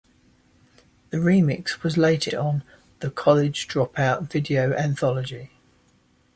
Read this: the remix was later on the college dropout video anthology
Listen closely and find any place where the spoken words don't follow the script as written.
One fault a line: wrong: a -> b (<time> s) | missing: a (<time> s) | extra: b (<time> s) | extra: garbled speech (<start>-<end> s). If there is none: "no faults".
no faults